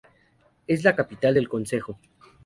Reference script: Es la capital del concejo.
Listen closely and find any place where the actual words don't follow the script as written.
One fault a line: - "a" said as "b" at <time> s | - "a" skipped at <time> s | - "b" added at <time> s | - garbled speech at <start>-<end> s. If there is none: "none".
none